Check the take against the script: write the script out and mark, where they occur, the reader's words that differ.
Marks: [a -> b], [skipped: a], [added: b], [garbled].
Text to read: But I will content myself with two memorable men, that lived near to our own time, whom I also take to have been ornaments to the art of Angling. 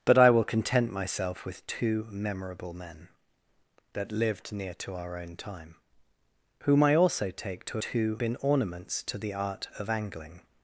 But I will content myself with two memorable men, that lived near to our own time, whom I also take to [have -> two] been ornaments to the art of Angling.